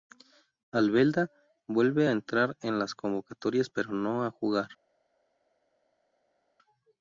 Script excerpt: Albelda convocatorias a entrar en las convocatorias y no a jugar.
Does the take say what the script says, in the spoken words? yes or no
no